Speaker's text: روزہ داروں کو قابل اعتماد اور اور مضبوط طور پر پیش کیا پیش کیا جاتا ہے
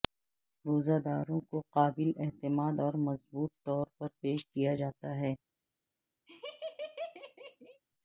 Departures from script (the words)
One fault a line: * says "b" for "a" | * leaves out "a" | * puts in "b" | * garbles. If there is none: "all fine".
* leaves out "اور"
* leaves out "پیش کیا"